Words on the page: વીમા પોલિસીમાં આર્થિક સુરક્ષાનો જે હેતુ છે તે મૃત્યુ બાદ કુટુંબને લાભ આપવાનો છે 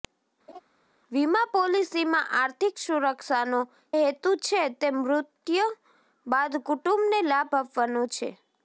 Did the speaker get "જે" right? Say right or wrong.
wrong